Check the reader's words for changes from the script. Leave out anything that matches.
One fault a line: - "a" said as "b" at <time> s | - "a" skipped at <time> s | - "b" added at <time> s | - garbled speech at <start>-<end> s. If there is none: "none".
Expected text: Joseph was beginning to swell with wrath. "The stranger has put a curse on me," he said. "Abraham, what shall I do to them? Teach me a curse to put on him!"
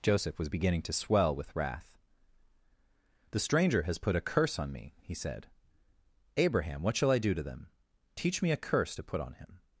none